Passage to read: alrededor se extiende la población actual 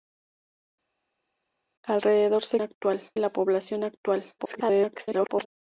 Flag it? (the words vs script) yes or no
yes